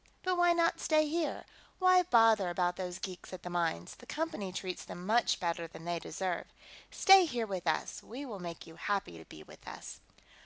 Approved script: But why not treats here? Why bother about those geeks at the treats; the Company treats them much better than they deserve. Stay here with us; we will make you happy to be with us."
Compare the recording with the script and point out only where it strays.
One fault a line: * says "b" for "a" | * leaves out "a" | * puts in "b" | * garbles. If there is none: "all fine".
* says "stay" for "treats"
* says "mines" for "treats"